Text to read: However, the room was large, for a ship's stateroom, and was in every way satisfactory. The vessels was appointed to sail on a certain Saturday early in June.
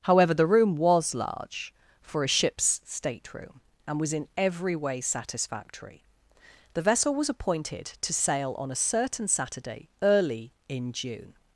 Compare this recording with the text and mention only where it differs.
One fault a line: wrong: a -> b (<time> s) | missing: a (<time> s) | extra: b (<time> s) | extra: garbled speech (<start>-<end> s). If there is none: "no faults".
wrong: vessels -> vessel (6.8 s)